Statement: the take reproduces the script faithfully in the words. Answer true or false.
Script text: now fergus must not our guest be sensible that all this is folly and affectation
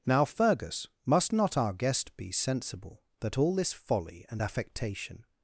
false